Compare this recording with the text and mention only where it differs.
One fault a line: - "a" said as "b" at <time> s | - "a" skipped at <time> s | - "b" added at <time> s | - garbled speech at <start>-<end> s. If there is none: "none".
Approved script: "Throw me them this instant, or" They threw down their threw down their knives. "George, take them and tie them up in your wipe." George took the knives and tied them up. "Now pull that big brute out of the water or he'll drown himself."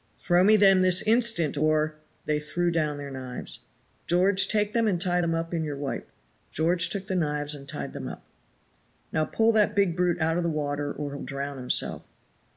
- "threw down their" skipped at 3.1 s